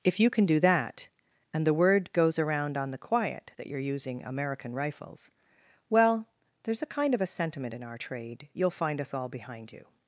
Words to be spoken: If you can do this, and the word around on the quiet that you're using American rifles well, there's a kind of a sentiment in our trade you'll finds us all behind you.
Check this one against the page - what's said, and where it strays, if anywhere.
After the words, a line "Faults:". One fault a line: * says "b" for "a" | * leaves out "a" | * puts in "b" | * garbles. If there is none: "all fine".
If you can do that, and the word goes around on the quiet that you're using American rifles well, there's a kind of a sentiment in our trade you'll find us all behind you.
Faults:
* says "that" for "this"
* puts in "goes"
* says "find" for "finds"